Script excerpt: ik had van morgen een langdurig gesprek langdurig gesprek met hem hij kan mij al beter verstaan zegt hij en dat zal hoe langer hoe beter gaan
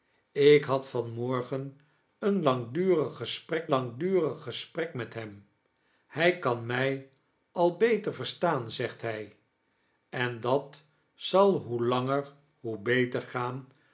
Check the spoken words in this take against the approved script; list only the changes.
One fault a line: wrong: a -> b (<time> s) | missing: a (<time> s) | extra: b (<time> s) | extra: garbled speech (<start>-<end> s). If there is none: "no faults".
no faults